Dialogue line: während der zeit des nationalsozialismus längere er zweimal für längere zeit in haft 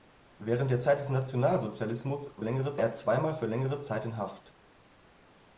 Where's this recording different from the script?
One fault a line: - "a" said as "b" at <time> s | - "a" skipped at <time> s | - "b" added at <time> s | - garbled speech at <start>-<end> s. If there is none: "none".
none